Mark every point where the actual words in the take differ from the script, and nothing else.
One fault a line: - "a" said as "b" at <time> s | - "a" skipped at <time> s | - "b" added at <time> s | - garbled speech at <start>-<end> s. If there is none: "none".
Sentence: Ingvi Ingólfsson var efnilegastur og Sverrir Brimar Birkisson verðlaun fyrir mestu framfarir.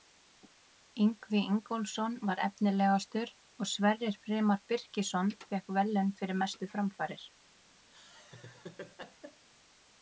- "fékk" added at 5.5 s